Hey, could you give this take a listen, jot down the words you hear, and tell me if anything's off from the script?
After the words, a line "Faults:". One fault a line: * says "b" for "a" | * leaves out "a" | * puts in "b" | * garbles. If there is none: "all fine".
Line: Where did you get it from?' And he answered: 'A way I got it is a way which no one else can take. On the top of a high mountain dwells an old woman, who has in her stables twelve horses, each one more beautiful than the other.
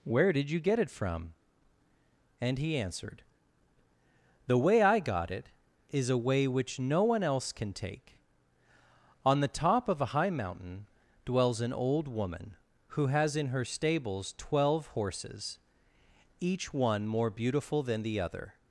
Where did you get it from?' And he answered: 'The way I got it is a way which no one else can take. On the top of a high mountain dwells an old woman, who has in her stables twelve horses, each one more beautiful than the other.
Faults:
* says "The" for "A"